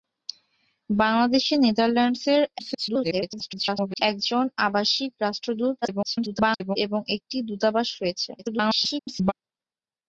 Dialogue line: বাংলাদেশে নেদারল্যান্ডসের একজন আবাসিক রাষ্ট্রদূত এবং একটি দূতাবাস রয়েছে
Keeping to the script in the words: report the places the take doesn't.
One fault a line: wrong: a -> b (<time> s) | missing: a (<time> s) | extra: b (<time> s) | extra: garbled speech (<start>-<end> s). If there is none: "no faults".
extra: garbled speech (2.6-4.0 s)
extra: garbled speech (5.8-6.8 s)
extra: garbled speech (8.4-9.3 s)